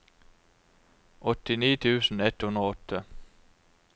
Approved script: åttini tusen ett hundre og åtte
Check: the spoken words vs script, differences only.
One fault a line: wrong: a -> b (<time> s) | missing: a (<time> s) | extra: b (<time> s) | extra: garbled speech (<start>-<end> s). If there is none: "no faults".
no faults